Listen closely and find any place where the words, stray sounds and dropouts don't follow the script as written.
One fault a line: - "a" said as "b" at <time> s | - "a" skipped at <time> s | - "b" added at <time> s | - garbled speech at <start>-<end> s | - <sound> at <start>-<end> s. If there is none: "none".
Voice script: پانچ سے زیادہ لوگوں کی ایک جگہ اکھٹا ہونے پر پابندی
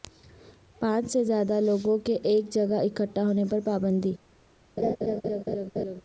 - "کی" said as "کے" at 2.0 s
- laugh at 4.8-6.0 s